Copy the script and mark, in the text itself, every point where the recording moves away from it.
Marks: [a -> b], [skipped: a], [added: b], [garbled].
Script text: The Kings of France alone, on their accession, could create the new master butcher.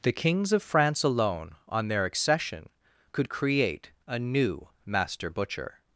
The Kings of France alone, on their accession, could create [the -> a] new master butcher.